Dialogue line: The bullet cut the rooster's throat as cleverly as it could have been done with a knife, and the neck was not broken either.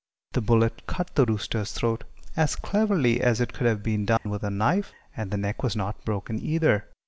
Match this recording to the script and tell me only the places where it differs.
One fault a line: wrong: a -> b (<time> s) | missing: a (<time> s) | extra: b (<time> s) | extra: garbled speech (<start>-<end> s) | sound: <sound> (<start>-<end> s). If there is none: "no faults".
sound: dropout (4.2-4.3 s)